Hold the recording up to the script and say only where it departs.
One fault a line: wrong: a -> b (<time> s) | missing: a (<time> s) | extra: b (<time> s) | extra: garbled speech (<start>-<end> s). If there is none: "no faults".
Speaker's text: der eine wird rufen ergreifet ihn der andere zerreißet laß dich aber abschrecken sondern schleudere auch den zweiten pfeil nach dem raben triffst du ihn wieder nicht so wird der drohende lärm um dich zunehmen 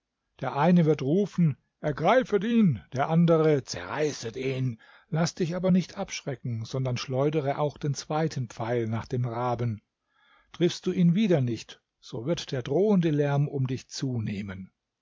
extra: ihn (4.4 s)
extra: nicht (5.7 s)